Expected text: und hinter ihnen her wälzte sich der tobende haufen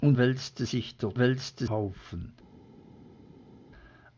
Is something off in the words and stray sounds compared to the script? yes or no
yes